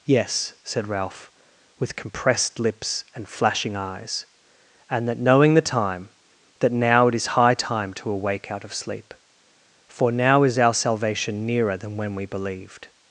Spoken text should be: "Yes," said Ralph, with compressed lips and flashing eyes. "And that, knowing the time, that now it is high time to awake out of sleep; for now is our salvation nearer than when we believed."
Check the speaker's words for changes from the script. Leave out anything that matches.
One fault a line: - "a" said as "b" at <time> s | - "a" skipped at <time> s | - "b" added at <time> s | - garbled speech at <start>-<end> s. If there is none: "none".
none